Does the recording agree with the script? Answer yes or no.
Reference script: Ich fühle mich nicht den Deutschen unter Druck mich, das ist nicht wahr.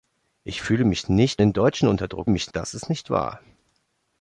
yes